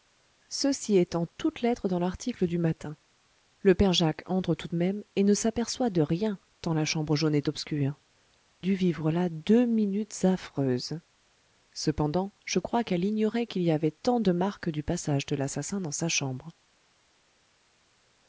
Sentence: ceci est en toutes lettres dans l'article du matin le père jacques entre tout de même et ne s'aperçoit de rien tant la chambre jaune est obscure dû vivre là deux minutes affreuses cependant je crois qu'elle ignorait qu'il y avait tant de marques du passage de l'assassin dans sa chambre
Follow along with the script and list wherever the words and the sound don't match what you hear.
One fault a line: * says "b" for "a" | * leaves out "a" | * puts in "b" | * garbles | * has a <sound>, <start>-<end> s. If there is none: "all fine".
all fine